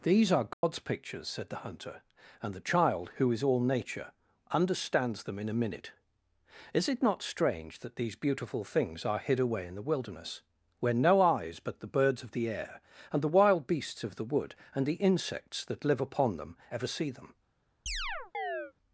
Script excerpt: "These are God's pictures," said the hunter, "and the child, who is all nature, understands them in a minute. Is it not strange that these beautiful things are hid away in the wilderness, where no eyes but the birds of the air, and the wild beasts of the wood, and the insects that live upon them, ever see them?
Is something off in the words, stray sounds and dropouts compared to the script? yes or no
yes